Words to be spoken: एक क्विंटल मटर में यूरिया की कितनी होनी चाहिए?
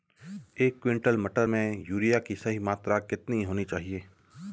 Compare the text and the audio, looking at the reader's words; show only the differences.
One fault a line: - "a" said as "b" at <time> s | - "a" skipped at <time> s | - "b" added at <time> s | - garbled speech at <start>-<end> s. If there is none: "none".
- "सही मात्रा" added at 2.3 s